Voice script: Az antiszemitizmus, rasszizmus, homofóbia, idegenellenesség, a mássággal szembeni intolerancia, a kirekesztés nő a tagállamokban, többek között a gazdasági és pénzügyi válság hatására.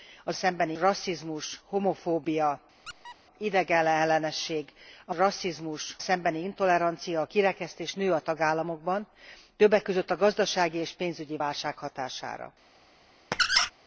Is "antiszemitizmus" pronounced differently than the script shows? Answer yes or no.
yes